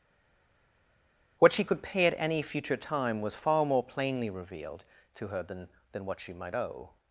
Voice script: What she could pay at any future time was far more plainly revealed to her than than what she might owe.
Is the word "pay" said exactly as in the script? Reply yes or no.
yes